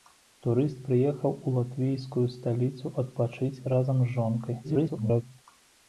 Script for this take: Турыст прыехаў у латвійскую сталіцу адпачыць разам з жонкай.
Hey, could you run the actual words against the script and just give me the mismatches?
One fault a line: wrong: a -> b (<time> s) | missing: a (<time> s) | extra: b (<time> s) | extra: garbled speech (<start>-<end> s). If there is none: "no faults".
extra: garbled speech (4.6-5.2 s)